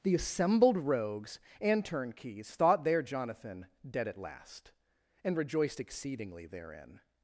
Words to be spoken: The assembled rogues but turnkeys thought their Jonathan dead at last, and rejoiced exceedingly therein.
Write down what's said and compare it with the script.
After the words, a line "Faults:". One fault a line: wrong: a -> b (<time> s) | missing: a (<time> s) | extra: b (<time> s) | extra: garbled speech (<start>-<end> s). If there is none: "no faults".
The assembled rogues and turnkeys thought their Jonathan dead at last, and rejoiced exceedingly therein.
Faults:
wrong: but -> and (1.6 s)